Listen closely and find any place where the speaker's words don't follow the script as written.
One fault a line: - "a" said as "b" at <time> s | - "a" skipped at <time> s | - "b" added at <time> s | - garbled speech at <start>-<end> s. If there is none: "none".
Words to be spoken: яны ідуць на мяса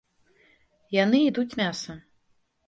- "на" skipped at 1.6 s